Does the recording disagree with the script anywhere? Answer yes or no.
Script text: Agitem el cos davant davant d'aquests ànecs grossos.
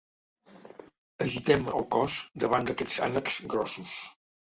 yes